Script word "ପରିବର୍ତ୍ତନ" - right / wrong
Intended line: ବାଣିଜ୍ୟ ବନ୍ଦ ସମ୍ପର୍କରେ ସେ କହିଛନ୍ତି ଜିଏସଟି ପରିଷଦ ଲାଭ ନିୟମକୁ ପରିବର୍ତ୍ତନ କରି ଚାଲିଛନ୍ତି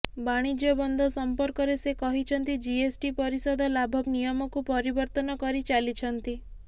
right